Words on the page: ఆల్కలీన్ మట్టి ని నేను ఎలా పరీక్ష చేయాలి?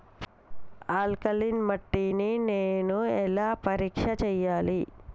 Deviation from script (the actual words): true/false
false